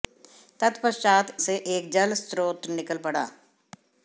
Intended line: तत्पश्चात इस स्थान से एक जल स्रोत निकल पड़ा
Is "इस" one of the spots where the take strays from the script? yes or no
yes